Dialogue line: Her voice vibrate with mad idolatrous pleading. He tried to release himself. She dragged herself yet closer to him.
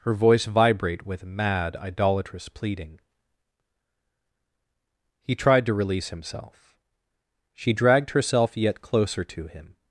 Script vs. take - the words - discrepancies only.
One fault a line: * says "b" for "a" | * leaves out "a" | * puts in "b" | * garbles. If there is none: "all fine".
all fine